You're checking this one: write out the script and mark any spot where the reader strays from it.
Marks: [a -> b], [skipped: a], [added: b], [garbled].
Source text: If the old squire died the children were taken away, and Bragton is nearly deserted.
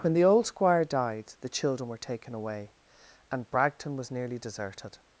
[If -> When] the old squire died the children were taken away, and Bragton [is -> was] nearly deserted.